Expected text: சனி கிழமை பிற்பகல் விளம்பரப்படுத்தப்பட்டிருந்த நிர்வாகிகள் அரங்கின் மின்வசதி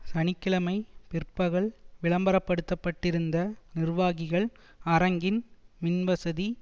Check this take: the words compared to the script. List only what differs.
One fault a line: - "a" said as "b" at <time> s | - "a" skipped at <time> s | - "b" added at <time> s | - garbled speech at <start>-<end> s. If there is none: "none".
none